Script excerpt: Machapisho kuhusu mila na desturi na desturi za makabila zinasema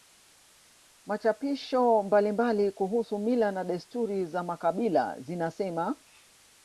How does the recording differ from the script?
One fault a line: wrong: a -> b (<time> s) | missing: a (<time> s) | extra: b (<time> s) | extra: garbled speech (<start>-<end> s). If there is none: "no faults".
extra: mbalimbali (2.0 s)
missing: na desturi (4.2 s)